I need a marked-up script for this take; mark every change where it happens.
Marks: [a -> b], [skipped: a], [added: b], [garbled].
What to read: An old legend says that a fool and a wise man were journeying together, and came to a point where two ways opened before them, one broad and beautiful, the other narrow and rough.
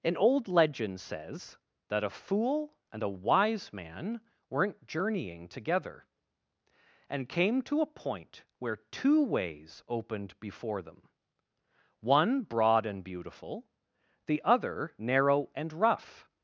An old legend says that a fool and a wise man [were -> weren't] journeying together, and came to a point where two ways opened before them, one broad and beautiful, the other narrow and rough.